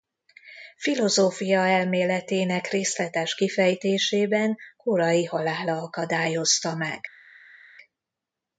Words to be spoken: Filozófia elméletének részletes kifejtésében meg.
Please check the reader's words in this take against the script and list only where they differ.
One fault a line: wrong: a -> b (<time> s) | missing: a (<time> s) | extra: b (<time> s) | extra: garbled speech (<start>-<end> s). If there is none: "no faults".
extra: korai halála akadályozta (4.8 s)